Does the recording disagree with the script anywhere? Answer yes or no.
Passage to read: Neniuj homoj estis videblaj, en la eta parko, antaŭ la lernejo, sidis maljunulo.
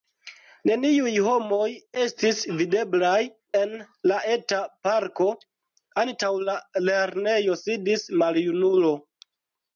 no